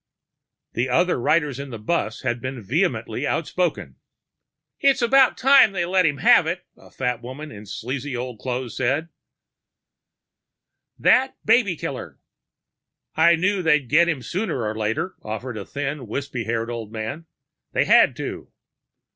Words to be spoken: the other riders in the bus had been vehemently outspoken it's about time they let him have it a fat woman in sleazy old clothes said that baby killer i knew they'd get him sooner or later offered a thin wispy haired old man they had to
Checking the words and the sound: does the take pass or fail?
pass